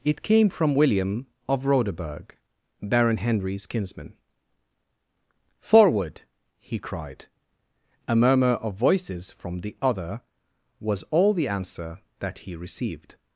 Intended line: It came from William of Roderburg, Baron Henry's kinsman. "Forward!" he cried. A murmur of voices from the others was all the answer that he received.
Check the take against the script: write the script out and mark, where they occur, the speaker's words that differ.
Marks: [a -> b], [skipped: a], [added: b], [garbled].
It came from William of Roderburg, Baron Henry's kinsman. "Forward!" he cried. A murmur of voices from the [others -> other] was all the answer that he received.